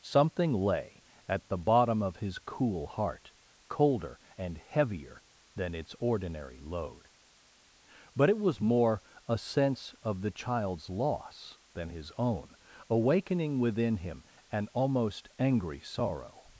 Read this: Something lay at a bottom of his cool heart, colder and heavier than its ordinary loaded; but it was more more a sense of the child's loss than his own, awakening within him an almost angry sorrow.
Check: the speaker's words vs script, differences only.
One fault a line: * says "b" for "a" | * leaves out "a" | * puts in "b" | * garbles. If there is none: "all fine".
* says "the" for "a"
* says "load" for "loaded"
* leaves out "more"